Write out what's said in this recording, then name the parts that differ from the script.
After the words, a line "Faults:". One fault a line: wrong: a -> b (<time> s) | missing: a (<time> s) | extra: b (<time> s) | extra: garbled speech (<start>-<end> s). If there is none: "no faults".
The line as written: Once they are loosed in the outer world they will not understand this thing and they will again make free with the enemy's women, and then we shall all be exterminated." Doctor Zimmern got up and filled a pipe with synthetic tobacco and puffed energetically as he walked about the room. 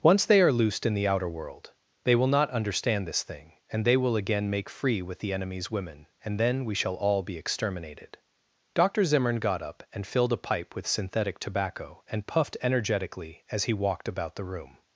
Once they are loosed in the outer world they will not understand this thing and they will again make free with the enemy's women, and then we shall all be exterminated." Doctor Zimmern got up and filled a pipe with synthetic tobacco and puffed energetically as he walked about the room.
Faults:
no faults